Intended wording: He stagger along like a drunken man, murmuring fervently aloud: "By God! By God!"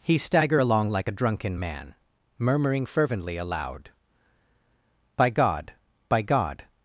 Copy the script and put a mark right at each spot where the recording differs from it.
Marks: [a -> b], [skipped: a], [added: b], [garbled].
He stagger along like a drunken man, murmuring fervently aloud: "By God! By God!"